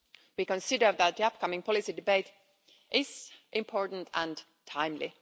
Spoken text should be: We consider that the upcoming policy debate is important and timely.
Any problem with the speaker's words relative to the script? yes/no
no